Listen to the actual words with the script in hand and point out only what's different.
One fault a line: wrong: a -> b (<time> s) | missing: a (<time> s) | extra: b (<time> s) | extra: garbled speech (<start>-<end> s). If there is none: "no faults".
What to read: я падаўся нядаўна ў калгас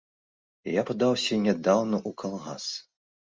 no faults